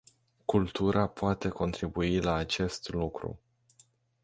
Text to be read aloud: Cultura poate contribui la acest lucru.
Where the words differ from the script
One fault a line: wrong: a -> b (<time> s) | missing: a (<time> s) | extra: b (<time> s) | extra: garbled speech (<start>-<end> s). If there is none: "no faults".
no faults